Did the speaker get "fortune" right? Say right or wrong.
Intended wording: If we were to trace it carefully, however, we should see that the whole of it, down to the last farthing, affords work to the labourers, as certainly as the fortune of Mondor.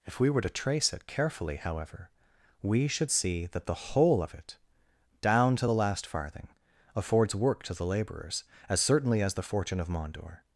right